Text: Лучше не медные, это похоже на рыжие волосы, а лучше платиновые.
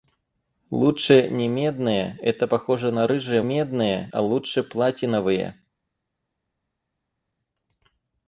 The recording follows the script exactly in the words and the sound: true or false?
false